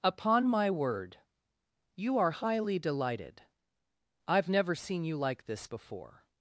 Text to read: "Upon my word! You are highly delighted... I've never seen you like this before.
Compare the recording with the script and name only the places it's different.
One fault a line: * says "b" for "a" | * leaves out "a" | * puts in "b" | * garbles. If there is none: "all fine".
all fine